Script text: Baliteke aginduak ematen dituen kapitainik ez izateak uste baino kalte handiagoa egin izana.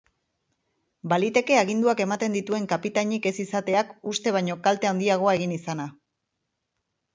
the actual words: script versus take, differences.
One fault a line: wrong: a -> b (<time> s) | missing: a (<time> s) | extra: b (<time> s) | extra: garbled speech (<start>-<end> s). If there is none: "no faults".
no faults